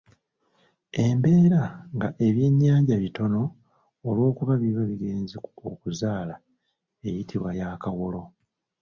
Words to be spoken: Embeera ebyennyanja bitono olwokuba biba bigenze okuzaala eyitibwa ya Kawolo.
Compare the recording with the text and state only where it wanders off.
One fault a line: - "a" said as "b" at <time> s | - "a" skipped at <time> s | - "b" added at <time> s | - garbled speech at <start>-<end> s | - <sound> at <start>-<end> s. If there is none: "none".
- "nga" added at 1.9 s